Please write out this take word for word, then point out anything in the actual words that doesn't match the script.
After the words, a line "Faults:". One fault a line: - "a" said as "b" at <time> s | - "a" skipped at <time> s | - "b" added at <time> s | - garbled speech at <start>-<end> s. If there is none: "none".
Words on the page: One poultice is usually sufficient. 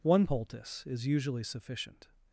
One poultice is usually sufficient.
Faults:
none